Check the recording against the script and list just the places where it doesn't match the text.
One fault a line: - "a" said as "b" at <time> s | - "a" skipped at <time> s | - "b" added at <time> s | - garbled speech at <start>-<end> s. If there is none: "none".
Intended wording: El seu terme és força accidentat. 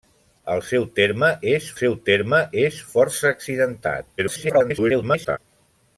- "seu terme és" added at 1.8 s
- garbled speech at 4.2-5.4 s